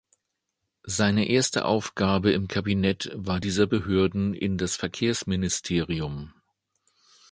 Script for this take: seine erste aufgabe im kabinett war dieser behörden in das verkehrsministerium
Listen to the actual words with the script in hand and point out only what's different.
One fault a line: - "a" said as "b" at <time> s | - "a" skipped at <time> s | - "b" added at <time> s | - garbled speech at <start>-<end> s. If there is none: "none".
none